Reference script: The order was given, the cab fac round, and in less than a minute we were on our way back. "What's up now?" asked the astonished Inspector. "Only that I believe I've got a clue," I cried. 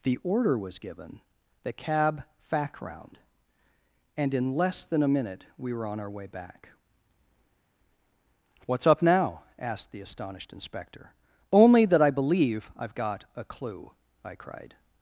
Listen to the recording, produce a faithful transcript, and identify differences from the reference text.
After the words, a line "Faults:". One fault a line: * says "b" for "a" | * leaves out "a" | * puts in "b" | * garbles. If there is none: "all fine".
The order was given, the cab fac round, and in less than a minute we were on our way back. "What's up now?" asked the astonished Inspector. "Only that I believe I've got a clue," I cried.
Faults:
all fine